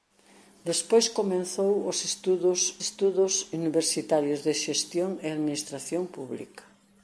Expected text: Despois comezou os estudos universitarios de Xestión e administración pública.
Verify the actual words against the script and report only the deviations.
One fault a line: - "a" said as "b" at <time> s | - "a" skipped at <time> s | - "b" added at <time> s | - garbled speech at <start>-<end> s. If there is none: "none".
- "estudos" added at 2.8 s